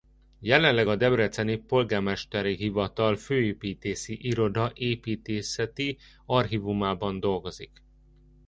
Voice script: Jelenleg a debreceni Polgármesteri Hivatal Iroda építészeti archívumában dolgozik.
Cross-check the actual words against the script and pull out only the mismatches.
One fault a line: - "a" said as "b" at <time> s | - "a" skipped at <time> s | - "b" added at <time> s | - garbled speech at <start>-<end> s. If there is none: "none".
- "Főépítészi" added at 3.2 s